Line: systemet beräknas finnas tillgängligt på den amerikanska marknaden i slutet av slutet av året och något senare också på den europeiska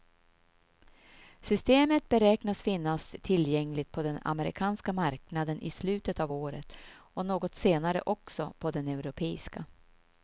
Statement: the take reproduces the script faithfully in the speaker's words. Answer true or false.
false